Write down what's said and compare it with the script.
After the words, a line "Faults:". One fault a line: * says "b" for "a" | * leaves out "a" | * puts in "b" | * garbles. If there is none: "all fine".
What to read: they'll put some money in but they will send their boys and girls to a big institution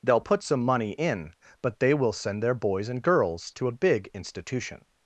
they'll put some money in but they will send their boys and girls to a big institution
Faults:
all fine